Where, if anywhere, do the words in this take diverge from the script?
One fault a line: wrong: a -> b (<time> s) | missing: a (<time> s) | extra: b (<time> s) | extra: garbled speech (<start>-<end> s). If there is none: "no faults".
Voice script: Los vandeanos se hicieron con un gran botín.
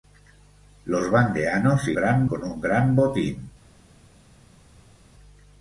wrong: hicieron -> gran (1.9 s)